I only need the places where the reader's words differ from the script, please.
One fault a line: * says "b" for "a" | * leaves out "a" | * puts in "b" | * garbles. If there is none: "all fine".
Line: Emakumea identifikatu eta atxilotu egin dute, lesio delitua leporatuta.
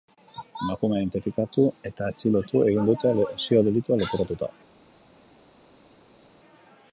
all fine